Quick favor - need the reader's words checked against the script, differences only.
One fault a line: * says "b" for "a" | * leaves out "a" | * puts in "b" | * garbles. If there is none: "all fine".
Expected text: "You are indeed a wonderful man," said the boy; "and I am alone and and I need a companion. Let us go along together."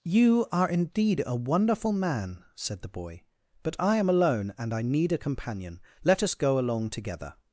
* says "but" for "and"
* leaves out "and"